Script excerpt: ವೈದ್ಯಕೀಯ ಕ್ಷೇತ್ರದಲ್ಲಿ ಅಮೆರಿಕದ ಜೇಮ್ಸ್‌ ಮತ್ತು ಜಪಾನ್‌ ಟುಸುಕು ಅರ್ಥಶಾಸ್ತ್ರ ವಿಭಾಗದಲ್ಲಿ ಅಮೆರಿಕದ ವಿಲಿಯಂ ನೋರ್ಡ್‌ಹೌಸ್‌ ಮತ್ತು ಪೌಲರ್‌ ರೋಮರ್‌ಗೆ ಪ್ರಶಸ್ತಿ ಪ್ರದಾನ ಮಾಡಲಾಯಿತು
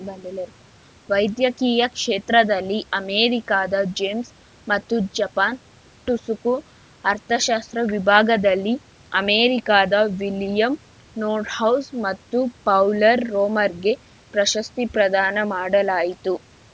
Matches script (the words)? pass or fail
pass